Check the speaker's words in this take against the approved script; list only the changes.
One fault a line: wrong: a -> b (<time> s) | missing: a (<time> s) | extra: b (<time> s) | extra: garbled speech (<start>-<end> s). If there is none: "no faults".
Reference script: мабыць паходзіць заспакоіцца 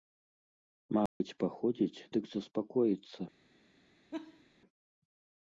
extra: дык (2.2 s)